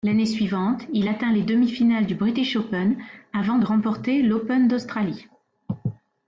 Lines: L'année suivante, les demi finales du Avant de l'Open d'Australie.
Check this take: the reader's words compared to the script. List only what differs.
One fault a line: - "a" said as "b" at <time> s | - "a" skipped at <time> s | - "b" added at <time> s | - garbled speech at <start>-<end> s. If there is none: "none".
- "il atteint" added at 0.9 s
- "British Open" added at 2.1 s
- "remporter" added at 3.6 s